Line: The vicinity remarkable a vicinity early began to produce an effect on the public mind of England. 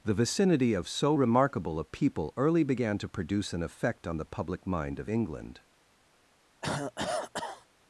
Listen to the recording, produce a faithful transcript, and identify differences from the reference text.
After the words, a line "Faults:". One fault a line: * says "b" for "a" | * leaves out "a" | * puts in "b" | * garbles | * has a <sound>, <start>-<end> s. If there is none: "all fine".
The vicinity of so remarkable a people early began to produce an effect on the public mind of England.
Faults:
* puts in "of so"
* says "people" for "vicinity"
* has a cough, 6.6-7.7 s